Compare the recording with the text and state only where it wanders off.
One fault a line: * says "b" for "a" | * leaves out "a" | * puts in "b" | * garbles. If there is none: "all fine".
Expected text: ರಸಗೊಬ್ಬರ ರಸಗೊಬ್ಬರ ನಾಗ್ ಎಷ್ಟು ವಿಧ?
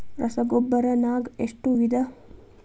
* leaves out "ರಸಗೊಬ್ಬರ"